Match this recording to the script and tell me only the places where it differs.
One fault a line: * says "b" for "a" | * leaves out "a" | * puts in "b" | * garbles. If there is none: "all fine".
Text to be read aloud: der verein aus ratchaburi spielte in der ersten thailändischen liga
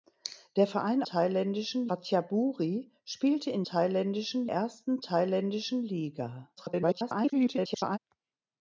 * says "thailändischen" for "aus"
* says "thailändischen" for "der"
* garbles